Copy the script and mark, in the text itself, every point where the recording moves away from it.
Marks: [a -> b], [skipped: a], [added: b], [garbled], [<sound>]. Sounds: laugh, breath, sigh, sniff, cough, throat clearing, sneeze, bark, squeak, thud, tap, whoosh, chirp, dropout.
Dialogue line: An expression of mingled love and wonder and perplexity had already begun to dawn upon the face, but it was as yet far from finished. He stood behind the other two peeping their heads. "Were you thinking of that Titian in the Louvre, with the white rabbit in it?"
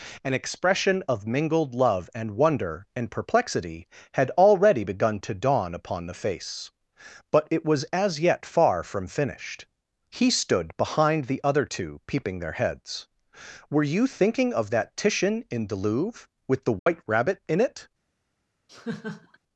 An expression of mingled love and wonder and perplexity had already begun to dawn upon the face, but it was as yet far from finished. He stood behind the other two peeping their heads. "Were you thinking of that Titian in the Louvre, with the white [dropout] rabbit in it?" [laugh]